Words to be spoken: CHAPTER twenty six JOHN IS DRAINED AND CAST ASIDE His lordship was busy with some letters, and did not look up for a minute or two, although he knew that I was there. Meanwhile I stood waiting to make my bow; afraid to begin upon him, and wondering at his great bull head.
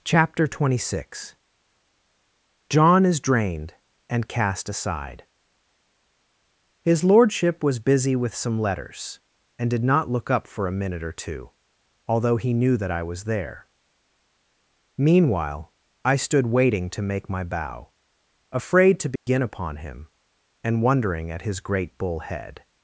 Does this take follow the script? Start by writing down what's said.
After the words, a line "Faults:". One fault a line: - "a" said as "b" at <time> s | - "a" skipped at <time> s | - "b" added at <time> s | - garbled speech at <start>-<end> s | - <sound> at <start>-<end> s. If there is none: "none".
CHAPTER twenty six JOHN IS DRAINED AND CAST ASIDE His lordship was busy with some letters, and did not look up for a minute or two, although he knew that I was there. Meanwhile I stood waiting to make my bow; afraid to begin upon him, and wondering at his great bull head.
Faults:
- dropout at 19.2-19.3 s